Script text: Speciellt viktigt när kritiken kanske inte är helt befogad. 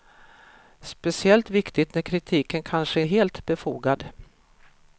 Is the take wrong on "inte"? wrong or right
wrong